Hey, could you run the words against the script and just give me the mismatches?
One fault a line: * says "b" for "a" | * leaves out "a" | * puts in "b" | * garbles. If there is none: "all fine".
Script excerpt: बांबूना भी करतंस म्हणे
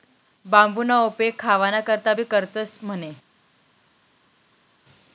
* puts in "उपेग खावाना करता"